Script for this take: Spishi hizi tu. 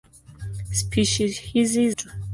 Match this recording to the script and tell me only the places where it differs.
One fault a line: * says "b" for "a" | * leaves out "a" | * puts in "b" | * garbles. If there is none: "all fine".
all fine